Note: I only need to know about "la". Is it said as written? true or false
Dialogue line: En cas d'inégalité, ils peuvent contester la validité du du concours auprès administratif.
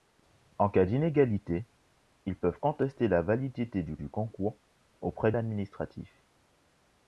true